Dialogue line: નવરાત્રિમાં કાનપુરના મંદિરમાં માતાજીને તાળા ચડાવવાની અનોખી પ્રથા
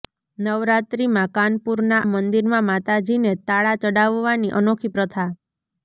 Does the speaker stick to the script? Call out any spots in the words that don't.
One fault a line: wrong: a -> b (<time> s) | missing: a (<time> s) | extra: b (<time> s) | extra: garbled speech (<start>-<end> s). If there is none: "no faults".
no faults